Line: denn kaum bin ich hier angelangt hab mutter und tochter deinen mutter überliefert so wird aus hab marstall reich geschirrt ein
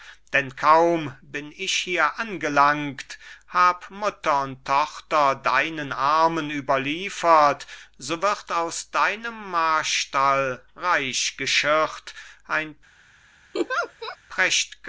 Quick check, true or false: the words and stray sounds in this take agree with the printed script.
false